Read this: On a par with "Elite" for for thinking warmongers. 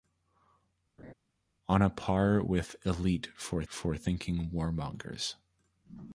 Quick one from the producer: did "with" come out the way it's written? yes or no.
yes